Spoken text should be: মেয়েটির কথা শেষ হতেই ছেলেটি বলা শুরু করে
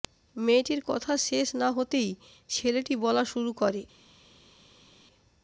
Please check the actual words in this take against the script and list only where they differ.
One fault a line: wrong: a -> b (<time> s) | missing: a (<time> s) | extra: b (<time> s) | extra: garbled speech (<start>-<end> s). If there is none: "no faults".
extra: না (1.6 s)